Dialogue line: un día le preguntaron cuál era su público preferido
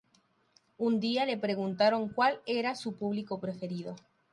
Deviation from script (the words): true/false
false